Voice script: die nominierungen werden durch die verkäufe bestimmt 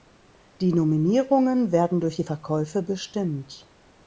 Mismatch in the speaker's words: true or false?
false